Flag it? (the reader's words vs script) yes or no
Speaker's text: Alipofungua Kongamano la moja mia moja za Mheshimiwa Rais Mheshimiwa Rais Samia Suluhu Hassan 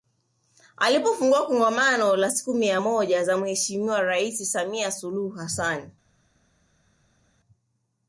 yes